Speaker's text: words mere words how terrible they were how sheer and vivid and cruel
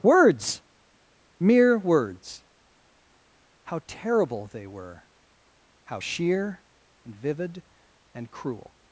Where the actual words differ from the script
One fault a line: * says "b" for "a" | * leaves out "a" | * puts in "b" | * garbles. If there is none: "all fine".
all fine